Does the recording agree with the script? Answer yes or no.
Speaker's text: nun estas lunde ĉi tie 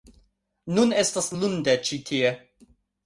yes